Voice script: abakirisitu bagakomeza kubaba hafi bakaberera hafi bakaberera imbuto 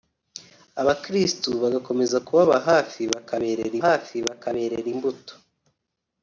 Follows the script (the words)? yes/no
yes